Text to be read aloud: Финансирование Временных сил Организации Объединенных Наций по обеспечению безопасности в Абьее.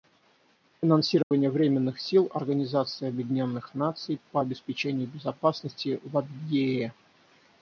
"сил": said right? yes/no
yes